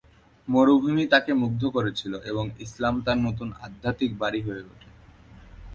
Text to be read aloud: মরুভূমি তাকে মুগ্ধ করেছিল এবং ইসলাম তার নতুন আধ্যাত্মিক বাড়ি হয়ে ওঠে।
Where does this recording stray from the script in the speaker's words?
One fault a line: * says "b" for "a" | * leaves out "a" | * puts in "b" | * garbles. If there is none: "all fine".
all fine